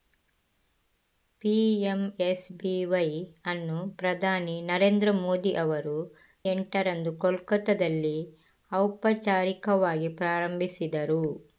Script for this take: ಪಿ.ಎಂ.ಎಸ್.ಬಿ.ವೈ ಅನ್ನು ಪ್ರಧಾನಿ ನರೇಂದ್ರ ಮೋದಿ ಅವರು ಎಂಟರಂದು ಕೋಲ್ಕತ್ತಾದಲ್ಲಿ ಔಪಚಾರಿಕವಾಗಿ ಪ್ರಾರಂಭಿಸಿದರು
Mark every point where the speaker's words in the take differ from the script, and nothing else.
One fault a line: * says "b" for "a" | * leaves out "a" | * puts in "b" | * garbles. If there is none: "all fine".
all fine